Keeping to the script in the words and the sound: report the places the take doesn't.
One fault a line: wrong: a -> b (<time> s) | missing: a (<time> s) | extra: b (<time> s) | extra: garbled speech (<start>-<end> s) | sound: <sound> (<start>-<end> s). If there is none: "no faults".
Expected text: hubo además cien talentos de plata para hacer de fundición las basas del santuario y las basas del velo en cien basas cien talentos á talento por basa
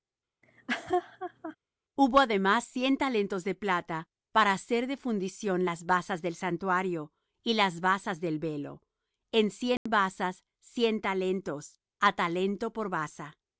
sound: laugh (0.4-1.6 s)
sound: dropout (9.8-9.9 s)